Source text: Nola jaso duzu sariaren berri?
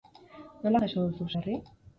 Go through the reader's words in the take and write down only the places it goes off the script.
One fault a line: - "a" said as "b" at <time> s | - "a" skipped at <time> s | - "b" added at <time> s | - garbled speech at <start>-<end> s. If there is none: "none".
- "sariaren" skipped at 1.3 s